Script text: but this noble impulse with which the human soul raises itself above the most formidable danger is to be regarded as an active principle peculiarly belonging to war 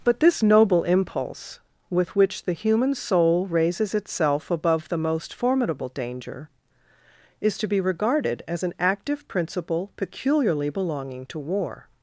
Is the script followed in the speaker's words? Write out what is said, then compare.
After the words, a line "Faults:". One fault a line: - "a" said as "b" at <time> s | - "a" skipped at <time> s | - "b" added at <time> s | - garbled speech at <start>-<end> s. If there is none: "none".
but this noble impulse with which the human soul raises itself above the most formidable danger is to be regarded as an active principle peculiarly belonging to war
Faults:
none